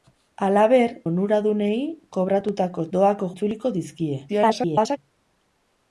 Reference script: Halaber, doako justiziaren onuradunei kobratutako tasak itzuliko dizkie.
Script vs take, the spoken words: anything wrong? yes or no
yes